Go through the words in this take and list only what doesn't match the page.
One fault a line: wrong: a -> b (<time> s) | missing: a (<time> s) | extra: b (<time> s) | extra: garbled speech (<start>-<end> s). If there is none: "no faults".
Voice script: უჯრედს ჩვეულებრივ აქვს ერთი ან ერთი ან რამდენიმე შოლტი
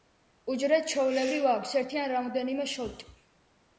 missing: ერთი ან (2.1 s)